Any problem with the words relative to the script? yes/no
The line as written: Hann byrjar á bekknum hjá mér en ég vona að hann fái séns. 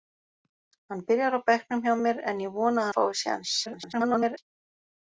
yes